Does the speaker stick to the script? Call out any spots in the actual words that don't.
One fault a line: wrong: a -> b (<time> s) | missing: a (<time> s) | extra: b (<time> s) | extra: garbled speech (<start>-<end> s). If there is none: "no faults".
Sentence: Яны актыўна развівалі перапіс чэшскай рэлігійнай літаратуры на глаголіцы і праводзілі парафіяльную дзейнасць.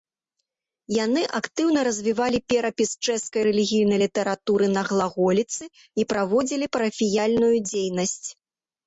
no faults